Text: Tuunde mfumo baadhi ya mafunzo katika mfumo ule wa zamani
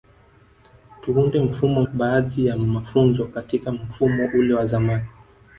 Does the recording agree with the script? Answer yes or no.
yes